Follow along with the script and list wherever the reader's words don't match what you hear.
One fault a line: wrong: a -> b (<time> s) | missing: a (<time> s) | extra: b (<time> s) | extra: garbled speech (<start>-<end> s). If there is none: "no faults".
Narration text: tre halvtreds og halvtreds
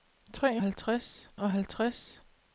no faults